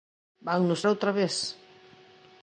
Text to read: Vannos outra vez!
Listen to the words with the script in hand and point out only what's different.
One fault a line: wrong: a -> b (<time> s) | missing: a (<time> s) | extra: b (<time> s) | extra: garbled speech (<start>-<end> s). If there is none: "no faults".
no faults